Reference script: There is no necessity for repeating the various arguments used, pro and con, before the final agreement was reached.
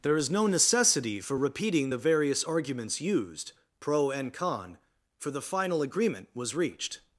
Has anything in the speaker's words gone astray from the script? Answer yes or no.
yes